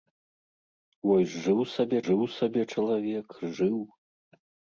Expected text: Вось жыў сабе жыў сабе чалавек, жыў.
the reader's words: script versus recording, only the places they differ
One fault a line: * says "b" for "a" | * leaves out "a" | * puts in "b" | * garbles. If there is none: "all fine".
all fine